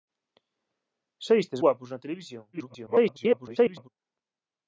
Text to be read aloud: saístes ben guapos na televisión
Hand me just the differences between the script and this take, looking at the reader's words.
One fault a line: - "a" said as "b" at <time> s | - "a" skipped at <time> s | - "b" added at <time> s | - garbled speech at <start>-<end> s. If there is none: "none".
- "ben" skipped at 1.6 s
- garbled speech at 2.5-3.9 s